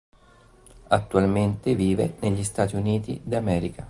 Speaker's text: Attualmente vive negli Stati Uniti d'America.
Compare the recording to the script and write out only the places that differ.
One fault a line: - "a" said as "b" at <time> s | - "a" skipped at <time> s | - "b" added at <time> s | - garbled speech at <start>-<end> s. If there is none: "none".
none